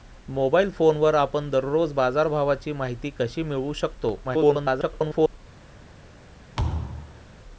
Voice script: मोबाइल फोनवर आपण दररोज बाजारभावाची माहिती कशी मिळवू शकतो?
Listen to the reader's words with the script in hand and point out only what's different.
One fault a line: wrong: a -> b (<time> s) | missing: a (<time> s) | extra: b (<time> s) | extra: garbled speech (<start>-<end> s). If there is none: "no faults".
extra: garbled speech (4.2-5.4 s)